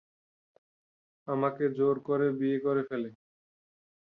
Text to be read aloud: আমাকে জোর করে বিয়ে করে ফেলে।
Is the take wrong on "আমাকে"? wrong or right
right